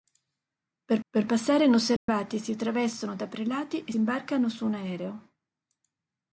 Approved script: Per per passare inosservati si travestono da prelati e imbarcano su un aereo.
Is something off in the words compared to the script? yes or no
no